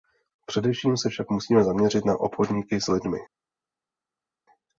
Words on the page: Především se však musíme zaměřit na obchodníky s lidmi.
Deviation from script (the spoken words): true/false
false